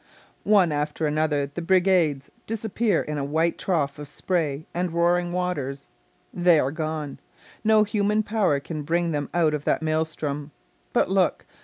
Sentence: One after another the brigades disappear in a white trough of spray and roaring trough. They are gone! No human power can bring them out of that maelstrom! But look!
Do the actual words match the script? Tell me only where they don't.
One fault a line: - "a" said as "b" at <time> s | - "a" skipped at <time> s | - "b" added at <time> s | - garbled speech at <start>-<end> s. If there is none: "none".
- "trough" said as "waters" at 5.3 s